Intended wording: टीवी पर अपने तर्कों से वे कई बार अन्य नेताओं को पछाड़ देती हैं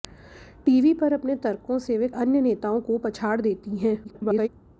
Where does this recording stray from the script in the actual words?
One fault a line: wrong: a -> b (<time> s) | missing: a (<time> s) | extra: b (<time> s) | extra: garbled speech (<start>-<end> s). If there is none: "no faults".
missing: कई बार (2.1 s)
extra: garbled speech (4.0-4.5 s)